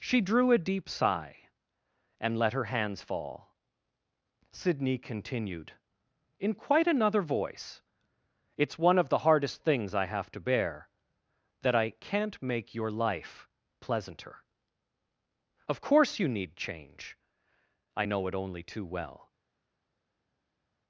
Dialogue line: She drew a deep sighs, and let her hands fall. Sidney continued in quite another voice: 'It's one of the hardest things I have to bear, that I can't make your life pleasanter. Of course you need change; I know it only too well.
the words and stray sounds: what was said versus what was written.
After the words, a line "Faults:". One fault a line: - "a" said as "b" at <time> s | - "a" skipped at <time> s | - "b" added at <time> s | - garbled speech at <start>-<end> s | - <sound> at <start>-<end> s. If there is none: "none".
She drew a deep sigh, and let her hands fall. Sidney continued in quite another voice: 'It's one of the hardest things I have to bear, that I can't make your life pleasanter. Of course you need change; I know it only too well.
Faults:
- "sighs" said as "sigh" at 0.9 s